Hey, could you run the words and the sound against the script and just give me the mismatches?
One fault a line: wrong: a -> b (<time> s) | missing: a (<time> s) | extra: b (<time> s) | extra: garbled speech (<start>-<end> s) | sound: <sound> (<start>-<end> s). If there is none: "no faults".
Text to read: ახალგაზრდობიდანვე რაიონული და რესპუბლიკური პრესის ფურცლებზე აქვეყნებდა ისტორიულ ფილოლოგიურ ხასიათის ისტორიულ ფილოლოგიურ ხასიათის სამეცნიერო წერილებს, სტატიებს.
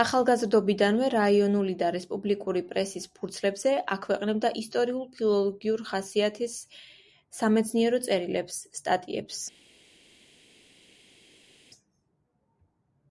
missing: ისტორიულ ფილოლოგიურ ხასიათის (6.5 s)